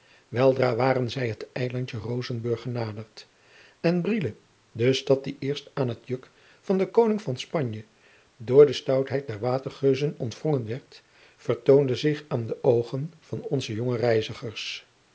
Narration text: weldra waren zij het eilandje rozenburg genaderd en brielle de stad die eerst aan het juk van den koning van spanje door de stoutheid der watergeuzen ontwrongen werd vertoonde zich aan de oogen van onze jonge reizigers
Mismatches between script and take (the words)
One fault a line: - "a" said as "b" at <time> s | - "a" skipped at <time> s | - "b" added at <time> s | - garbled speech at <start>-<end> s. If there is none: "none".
none